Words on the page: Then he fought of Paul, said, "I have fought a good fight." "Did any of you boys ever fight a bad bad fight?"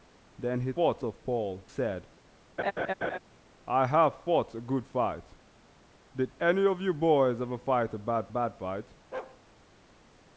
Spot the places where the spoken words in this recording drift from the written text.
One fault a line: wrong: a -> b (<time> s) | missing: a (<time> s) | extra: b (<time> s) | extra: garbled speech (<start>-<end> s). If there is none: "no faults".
no faults